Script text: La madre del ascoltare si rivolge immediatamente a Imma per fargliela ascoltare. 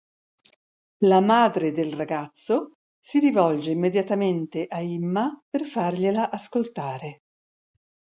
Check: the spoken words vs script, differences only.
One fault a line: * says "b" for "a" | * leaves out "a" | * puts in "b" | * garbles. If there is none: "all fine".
* says "ragazzo" for "ascoltare"